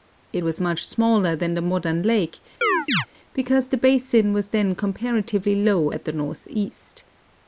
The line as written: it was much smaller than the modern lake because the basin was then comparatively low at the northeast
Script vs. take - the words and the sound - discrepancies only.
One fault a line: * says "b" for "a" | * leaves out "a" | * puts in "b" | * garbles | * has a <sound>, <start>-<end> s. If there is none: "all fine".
* has a chirp, 2.6-3.1 s